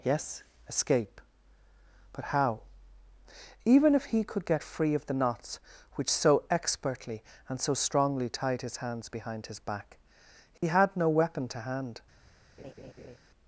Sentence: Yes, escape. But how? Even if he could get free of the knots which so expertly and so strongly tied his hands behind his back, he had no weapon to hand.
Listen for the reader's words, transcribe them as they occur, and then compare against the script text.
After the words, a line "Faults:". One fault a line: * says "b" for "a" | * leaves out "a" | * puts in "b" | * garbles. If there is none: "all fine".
Yes, escape. But how? Even if he could get free of the knots which so expertly and so strongly tied his hands behind his back, he had no weapon to hand.
Faults:
all fine